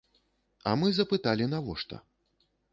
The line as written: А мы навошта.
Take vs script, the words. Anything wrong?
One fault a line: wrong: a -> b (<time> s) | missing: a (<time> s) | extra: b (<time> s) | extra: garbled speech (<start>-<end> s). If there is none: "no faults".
extra: запыталі (1.0 s)